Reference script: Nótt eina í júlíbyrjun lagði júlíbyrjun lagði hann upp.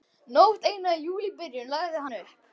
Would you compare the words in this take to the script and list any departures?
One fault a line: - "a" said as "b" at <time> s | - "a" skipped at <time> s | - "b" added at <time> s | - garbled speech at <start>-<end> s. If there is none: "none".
- "júlíbyrjun lagði" skipped at 2.1 s